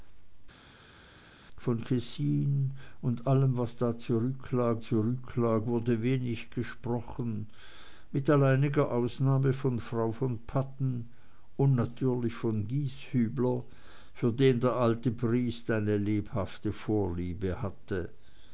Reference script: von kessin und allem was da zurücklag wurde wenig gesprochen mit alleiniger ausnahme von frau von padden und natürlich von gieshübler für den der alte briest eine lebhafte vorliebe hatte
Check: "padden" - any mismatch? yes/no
no